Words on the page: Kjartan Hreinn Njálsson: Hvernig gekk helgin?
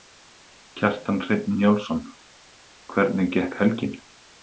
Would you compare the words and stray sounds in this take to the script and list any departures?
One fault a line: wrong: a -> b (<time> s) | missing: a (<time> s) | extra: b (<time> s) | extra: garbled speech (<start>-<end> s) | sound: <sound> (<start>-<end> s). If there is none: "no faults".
no faults